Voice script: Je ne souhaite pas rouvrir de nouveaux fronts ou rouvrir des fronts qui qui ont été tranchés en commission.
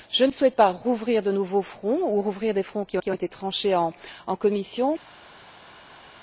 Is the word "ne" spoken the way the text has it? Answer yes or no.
yes